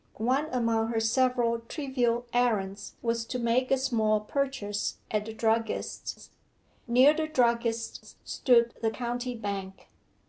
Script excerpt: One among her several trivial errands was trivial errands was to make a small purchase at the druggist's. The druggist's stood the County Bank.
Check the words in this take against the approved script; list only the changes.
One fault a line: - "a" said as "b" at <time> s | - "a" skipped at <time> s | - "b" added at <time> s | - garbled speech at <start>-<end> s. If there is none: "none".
- "trivial errands was" skipped at 3.2 s
- "Near" added at 6.9 s